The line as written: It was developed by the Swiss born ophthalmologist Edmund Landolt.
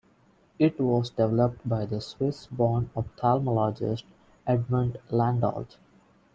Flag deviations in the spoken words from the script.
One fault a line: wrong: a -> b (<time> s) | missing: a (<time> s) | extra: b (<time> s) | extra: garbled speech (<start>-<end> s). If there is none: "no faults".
no faults